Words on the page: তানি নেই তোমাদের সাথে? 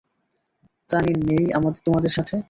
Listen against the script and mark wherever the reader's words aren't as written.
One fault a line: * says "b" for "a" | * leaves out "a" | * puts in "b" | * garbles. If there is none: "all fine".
all fine